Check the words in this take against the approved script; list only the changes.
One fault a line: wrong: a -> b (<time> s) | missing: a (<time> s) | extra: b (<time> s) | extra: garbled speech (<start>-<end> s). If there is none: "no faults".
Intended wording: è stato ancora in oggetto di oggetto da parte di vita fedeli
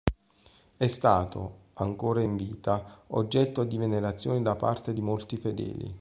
extra: vita (2.4 s)
wrong: oggetto -> venerazione (3.7 s)
wrong: vita -> molti (5.0 s)